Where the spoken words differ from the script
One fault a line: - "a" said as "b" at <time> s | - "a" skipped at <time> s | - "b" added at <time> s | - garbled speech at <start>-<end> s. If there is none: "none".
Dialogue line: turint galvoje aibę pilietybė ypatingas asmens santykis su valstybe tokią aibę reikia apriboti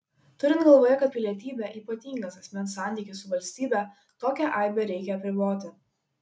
- "aibę" said as "kad" at 1.0 s